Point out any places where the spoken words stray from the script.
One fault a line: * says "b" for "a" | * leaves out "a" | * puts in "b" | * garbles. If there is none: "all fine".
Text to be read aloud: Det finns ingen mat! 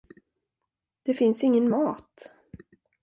all fine